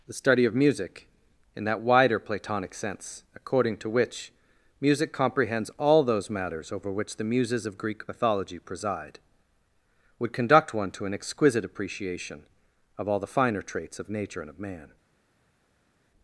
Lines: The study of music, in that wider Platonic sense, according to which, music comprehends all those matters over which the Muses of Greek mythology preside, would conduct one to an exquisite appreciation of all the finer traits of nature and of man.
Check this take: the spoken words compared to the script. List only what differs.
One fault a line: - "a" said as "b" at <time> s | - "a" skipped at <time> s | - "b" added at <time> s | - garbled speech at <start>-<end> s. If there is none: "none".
none